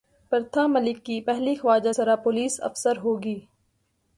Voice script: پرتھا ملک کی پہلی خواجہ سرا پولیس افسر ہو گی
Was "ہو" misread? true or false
false